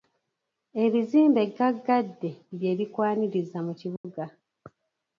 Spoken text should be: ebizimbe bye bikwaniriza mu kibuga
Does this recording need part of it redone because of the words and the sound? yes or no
yes